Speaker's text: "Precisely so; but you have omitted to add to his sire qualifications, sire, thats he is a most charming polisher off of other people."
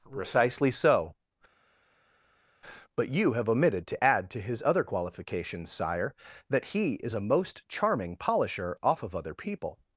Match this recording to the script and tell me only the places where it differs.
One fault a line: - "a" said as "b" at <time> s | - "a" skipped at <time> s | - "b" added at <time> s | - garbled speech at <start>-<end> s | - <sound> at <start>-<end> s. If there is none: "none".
- "sire" said as "other" at 4.6 s
- "thats" said as "that" at 6.5 s